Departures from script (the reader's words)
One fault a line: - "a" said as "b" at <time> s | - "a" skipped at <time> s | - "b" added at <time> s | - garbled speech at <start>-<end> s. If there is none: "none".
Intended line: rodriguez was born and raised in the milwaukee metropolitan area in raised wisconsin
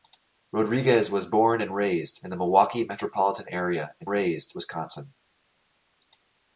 none